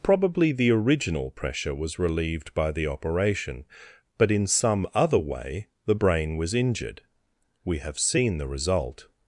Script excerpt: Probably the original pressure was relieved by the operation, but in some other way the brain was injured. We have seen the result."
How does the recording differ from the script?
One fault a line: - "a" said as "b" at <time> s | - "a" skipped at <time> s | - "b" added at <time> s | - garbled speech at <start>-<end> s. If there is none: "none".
none